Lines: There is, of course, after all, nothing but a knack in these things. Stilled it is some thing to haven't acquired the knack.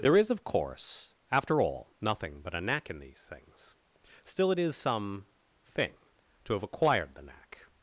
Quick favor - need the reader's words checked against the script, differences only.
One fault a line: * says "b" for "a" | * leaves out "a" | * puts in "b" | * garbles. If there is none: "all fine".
* says "Still" for "Stilled"
* says "have" for "haven't"